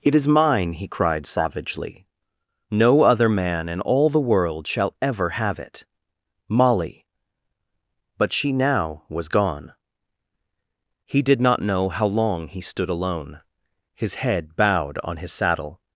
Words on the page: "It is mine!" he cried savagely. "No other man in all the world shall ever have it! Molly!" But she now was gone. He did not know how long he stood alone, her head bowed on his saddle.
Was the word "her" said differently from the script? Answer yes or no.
yes